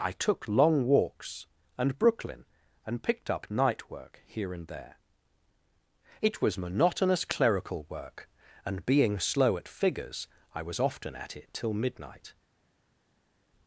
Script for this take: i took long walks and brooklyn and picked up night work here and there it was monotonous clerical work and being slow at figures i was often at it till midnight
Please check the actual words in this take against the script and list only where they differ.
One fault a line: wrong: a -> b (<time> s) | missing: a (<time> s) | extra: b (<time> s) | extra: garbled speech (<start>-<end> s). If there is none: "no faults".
no faults